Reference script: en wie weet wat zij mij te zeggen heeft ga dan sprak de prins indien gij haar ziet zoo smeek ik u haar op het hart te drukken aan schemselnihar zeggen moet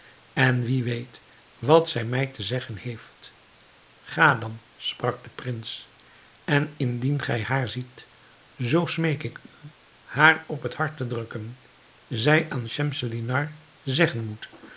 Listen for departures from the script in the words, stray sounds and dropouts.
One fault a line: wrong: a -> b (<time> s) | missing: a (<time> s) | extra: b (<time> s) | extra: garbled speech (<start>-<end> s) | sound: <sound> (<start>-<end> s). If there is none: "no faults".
extra: en (6.4 s)
extra: zij (12.1 s)